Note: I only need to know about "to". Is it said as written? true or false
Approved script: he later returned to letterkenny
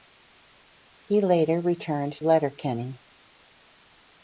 false